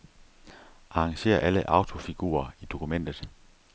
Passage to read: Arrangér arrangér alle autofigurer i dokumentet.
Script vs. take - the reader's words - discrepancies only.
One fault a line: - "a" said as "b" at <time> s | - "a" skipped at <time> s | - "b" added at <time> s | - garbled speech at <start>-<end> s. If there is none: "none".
- "arrangér" skipped at 1.4 s